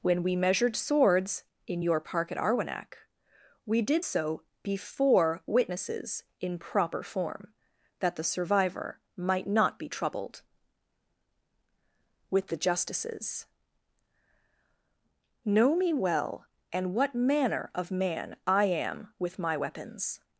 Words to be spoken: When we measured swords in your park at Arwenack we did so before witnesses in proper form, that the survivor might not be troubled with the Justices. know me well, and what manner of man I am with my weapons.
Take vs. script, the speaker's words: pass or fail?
pass